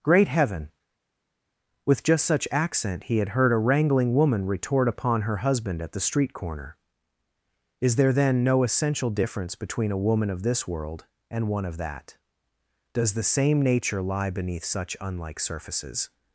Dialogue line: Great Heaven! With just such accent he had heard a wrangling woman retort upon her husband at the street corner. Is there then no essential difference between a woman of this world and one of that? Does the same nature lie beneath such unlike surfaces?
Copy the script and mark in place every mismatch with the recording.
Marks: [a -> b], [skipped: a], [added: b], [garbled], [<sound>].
Great Heaven! With just such accent he had heard a wrangling woman retort upon her husband at the street corner. Is there then no essential difference between a woman of this world and one of that? Does the same nature lie beneath such unlike surfaces?